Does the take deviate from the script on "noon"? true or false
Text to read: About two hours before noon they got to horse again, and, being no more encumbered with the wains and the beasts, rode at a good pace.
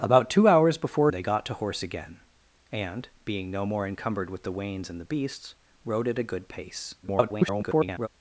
true